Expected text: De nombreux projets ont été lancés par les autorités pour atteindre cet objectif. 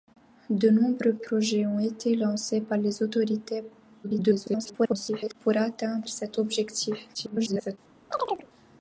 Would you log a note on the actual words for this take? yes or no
yes